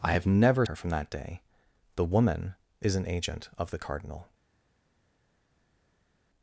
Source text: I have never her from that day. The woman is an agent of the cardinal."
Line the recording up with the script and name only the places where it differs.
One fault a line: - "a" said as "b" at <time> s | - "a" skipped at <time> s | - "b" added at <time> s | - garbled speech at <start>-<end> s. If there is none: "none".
none